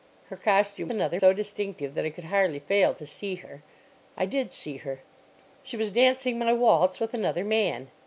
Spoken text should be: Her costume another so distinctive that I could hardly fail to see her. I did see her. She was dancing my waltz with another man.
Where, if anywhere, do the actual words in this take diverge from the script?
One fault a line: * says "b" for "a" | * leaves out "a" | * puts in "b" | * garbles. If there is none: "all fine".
all fine